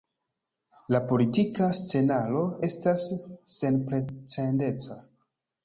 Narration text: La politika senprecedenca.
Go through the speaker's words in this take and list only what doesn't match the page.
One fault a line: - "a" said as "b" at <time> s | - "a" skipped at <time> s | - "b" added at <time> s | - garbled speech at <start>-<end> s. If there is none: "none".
- "scenaro estas" added at 1.8 s